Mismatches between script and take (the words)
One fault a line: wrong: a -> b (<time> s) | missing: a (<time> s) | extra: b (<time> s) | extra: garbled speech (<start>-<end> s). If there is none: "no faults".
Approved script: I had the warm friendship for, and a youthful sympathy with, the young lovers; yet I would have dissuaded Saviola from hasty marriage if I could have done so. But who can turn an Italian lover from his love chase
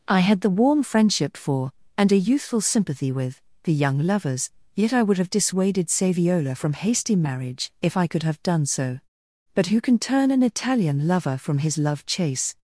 no faults